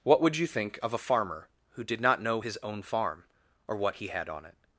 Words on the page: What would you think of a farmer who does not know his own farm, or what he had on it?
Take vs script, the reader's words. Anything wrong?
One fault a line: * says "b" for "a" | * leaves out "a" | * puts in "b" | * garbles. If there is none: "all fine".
* says "did" for "does"